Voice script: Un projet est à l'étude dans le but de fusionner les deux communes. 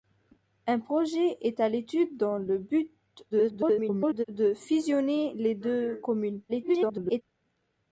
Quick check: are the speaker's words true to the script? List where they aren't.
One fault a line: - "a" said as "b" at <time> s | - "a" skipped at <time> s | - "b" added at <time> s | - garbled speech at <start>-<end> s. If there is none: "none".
- garbled speech at 3.3-4.2 s
- garbled speech at 6.5-7.2 s